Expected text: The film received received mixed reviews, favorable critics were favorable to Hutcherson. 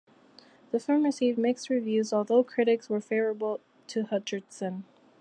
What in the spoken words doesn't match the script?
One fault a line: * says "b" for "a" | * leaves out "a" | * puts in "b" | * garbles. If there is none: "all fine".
* leaves out "received"
* says "although" for "favorable"